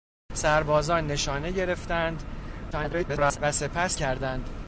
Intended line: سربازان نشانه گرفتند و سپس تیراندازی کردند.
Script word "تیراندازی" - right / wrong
wrong